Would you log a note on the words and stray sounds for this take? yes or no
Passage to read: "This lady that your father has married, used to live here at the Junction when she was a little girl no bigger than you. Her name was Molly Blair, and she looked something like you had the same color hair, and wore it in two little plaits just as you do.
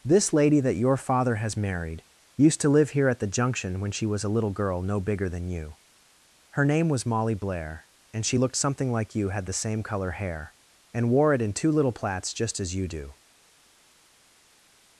no